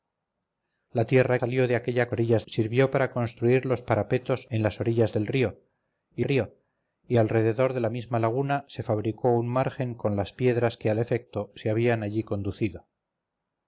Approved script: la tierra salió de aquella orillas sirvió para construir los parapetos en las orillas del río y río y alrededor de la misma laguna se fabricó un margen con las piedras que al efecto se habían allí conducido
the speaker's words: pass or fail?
pass